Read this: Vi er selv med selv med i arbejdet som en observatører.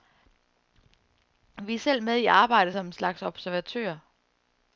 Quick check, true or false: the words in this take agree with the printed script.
false